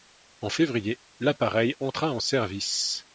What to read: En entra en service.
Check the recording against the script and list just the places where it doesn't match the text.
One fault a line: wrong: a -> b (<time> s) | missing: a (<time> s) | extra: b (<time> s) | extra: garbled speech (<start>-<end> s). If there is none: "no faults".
extra: février l'appareil (0.5 s)